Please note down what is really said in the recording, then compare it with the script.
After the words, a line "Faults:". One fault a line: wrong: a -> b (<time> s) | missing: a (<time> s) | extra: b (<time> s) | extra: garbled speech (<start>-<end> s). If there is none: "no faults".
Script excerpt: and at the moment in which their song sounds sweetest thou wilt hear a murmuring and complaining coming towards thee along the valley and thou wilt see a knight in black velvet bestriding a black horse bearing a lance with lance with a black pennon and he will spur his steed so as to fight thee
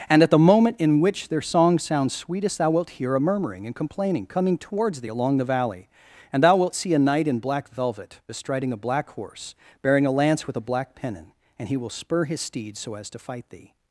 and at the moment in which their song sounds sweetest thou wilt hear a murmuring and complaining coming towards thee along the valley and thou wilt see a knight in black velvet bestriding a black horse bearing a lance with a black pennon and he will spur his steed so as to fight thee
Faults:
missing: lance with (10.6 s)